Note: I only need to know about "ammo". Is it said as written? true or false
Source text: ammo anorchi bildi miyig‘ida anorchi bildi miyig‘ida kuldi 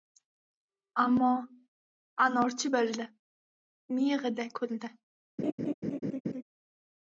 true